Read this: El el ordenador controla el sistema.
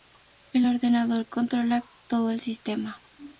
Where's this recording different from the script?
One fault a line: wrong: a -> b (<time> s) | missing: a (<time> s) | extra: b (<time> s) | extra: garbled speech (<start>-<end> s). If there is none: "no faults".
missing: el (0.7 s)
extra: todo (2.1 s)